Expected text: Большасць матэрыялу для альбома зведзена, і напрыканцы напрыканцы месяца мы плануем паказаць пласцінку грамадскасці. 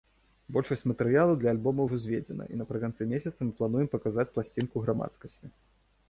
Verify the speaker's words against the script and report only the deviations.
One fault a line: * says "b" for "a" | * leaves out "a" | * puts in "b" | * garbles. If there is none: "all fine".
* puts in "ўжо"
* leaves out "напрыканцы"